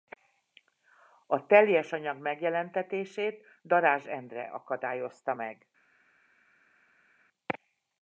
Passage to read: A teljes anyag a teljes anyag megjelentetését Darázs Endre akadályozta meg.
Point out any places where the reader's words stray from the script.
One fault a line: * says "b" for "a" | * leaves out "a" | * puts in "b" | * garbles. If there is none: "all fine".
* leaves out "a teljes anyag"